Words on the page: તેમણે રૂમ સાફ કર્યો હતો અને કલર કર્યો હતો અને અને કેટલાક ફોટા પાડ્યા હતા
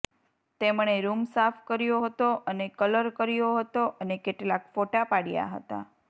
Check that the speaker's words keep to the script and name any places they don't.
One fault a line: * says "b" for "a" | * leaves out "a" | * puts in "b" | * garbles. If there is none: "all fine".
* leaves out "અને"